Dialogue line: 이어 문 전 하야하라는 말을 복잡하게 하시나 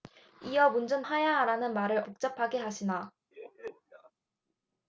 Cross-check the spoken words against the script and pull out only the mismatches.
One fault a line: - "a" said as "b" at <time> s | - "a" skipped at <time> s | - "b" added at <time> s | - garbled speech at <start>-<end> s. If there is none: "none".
none